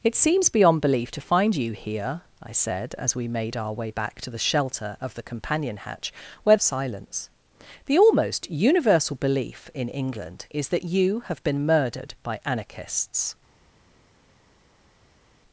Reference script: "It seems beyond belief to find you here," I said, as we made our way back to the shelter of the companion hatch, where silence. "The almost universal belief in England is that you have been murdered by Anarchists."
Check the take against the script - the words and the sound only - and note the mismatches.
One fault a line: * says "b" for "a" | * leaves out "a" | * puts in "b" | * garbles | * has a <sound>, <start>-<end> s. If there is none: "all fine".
all fine